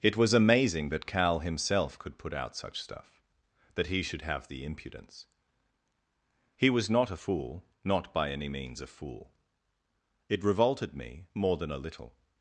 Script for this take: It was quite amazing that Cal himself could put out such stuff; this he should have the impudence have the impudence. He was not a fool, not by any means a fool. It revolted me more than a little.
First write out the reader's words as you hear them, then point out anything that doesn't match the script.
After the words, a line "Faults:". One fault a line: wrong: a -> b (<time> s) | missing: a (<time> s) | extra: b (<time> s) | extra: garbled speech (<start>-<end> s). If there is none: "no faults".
It was amazing that Cal himself could put out such stuff; that he should have the impudence. He was not a fool, not by any means a fool. It revolted me more than a little.
Faults:
missing: quite (0.3 s)
wrong: this -> that (3.7 s)
missing: have the impudence (5.3 s)